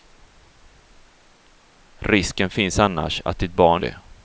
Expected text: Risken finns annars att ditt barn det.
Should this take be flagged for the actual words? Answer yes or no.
no